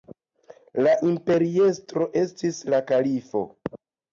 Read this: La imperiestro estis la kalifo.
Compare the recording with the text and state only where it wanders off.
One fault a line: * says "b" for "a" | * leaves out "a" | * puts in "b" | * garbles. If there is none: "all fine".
all fine